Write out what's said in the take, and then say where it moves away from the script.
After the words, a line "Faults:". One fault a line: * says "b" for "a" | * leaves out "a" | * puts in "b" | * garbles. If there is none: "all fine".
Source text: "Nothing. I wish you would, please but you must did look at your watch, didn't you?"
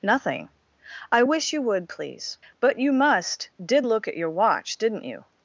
"Nothing. I wish you would, please but you must did look at your watch, didn't you?"
Faults:
all fine